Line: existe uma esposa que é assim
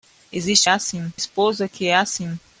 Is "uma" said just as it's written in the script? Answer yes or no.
no